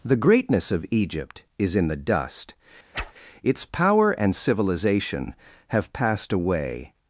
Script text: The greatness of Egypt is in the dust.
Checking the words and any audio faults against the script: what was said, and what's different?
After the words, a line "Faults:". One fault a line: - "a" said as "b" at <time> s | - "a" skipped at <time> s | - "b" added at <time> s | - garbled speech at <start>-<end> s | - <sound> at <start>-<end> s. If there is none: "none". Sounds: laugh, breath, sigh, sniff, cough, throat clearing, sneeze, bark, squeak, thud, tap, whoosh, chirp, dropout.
The greatness of Egypt is in the dust. Its power and civilization have passed away
Faults:
- whoosh at 2.9-3.1 s
- "Its power and civilization have passed away" added at 3.4 s